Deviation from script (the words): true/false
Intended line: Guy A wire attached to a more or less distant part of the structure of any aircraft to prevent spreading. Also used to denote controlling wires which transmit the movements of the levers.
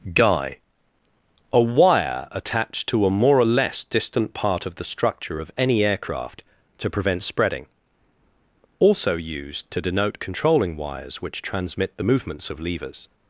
true